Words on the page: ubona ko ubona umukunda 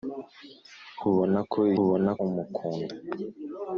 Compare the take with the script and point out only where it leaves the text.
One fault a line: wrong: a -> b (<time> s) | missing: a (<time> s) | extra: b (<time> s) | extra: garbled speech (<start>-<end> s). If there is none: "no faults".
no faults